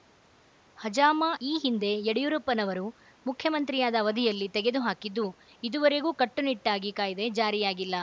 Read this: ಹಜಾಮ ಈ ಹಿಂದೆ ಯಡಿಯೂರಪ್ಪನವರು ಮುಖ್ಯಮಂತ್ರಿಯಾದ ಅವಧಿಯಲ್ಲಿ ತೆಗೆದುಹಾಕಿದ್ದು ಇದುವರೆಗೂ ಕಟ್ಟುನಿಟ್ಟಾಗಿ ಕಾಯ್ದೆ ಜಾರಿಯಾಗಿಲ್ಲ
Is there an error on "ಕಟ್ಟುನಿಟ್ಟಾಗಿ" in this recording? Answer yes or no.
no